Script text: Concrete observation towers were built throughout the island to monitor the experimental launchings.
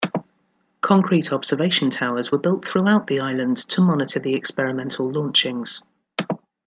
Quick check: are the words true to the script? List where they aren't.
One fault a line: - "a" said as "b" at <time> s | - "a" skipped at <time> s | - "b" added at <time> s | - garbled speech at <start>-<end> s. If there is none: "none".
none